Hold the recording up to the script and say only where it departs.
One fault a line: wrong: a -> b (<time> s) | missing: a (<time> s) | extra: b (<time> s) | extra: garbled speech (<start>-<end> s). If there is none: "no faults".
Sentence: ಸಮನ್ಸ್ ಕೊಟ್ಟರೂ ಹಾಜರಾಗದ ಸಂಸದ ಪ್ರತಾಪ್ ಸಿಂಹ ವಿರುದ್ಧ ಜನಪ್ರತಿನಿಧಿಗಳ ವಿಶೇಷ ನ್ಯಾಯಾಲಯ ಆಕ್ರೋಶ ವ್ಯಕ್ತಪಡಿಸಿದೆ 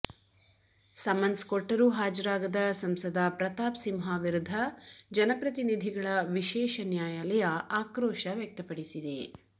no faults